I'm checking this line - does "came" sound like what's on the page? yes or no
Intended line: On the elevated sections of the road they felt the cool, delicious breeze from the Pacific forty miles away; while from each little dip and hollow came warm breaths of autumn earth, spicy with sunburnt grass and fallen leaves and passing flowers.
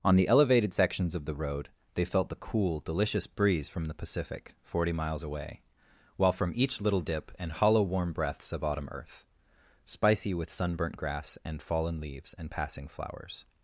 no